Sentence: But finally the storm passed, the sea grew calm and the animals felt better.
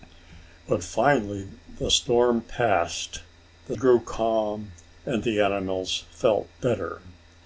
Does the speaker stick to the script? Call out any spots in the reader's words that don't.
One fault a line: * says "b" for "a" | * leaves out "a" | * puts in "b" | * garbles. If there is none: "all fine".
* leaves out "sea"